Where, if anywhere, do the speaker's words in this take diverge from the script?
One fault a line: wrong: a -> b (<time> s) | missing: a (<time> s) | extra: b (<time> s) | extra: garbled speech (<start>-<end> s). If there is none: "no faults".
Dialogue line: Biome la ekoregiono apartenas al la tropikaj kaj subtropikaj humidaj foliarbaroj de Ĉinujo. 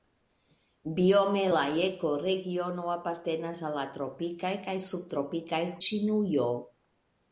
missing: humidaj foliarbaroj de (5.6 s)